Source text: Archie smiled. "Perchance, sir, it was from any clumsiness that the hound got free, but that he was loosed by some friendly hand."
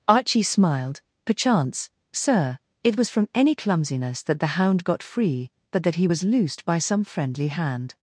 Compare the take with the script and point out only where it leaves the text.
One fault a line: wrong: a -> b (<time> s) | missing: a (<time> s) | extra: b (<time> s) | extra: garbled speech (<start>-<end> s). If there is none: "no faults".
no faults